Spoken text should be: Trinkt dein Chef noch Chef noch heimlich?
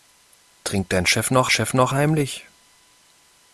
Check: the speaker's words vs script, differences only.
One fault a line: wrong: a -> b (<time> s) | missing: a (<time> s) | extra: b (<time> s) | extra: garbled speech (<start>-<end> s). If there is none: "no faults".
no faults